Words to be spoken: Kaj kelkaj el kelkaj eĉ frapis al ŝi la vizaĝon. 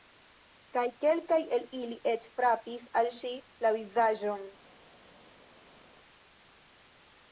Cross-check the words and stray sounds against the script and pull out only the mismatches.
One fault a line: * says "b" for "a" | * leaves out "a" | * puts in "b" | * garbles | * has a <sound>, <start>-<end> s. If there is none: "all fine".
* says "ili" for "kelkaj"